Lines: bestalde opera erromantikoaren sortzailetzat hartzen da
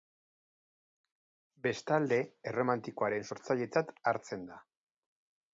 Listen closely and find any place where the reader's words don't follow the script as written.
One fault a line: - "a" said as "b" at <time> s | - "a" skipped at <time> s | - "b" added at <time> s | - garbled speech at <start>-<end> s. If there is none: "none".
- "opera" skipped at 2.2 s